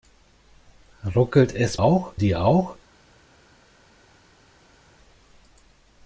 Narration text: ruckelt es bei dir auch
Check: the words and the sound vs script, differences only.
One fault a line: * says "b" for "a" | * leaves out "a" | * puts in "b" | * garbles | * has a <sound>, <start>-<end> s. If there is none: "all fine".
* says "auch" for "bei"